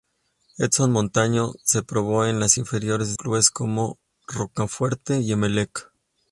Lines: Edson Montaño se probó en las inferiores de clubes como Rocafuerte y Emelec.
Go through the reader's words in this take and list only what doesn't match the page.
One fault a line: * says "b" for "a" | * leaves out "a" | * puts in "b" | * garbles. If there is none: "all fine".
* leaves out "de"